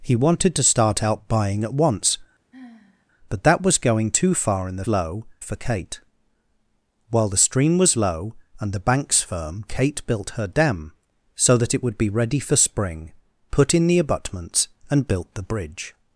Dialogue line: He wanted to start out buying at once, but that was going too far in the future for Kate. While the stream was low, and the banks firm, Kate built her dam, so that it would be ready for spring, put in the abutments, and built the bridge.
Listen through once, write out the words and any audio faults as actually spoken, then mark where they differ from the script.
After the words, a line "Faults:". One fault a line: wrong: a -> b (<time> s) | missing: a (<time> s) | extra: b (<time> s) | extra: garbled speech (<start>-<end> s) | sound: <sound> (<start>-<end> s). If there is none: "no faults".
He wanted to start out buying at once, but that was going too far in the low for Kate. While the stream was low, and the banks firm, Kate built her dam, so that it would be ready for spring, put in the abutments, and built the bridge.
Faults:
sound: sigh (2.5-3.1 s)
wrong: future -> low (4.9 s)